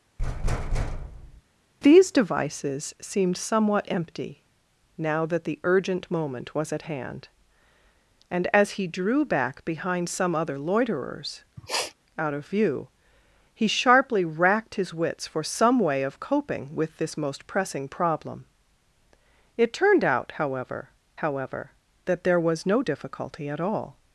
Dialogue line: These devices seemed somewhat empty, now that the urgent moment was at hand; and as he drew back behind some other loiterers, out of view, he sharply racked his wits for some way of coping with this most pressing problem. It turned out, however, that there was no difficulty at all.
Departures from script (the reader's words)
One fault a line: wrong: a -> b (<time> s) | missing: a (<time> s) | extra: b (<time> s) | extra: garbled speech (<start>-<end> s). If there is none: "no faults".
extra: however (21.2 s)